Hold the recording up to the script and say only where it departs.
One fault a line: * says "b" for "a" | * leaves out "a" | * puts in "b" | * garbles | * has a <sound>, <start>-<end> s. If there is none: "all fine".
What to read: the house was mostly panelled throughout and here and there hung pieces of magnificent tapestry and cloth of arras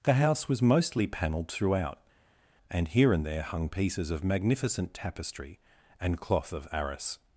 all fine